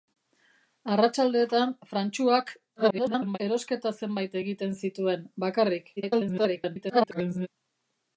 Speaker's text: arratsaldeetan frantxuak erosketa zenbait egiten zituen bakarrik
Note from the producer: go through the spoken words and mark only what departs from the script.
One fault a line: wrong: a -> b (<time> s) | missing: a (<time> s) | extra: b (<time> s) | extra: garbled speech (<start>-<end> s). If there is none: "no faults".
extra: garbled speech (2.8-3.4 s)
extra: garbled speech (6.0-7.5 s)